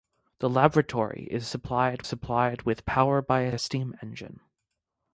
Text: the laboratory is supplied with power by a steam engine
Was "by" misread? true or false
false